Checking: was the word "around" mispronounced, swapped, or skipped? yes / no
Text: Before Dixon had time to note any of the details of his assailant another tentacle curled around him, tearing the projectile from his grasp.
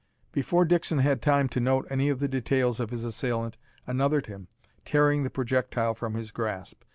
yes